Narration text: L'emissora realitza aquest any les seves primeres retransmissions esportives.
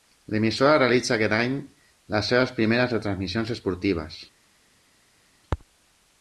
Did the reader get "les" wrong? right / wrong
right